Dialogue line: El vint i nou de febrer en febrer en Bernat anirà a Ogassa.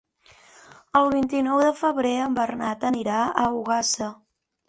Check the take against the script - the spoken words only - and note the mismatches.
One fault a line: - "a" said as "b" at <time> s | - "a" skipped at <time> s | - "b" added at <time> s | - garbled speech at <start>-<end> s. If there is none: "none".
- "febrer en" skipped at 2.4 s